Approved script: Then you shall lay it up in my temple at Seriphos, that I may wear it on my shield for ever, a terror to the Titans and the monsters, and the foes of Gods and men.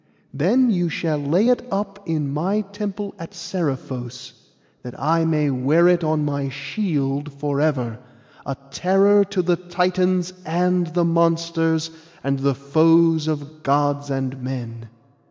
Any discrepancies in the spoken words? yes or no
no